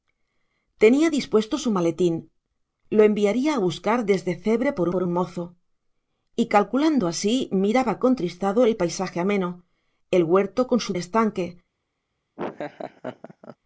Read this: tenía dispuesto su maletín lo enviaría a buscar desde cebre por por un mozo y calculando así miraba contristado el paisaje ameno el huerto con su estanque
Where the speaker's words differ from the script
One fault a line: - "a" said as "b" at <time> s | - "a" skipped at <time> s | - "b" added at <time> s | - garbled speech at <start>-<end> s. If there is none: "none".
none